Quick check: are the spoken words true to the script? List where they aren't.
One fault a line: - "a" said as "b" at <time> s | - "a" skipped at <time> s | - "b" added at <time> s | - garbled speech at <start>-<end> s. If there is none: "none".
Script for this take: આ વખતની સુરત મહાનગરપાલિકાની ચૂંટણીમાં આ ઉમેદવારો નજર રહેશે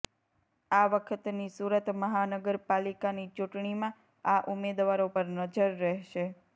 - "પર" added at 5.1 s